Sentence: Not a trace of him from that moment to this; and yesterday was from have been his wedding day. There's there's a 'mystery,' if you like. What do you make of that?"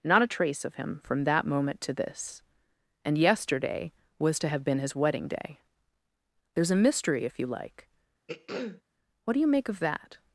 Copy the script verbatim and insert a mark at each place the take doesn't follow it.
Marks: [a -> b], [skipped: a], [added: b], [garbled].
Not a trace of him from that moment to this; and yesterday was [from -> to] have been his wedding day. There's [skipped: there's] a 'mystery,' if you like. What do you make of that?"